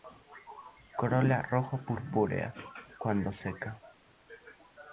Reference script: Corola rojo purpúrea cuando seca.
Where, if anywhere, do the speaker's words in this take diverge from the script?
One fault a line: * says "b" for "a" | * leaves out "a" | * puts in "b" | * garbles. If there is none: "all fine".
all fine